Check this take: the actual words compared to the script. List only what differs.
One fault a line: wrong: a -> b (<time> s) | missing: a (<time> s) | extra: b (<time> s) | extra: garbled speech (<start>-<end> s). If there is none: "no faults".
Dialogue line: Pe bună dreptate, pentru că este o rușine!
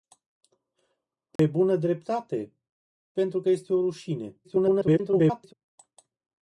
extra: garbled speech (4.4-5.5 s)